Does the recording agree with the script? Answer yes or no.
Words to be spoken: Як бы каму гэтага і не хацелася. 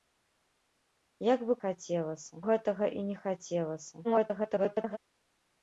no